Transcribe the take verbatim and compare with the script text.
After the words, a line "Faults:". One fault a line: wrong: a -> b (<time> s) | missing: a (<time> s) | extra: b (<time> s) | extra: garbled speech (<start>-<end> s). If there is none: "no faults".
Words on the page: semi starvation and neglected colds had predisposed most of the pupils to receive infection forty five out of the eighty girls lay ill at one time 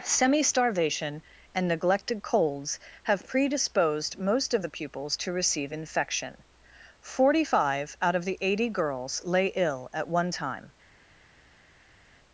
semi starvation and neglected colds have predisposed most of the pupils to receive infection forty five out of the eighty girls lay ill at one time
Faults:
wrong: had -> have (3.0 s)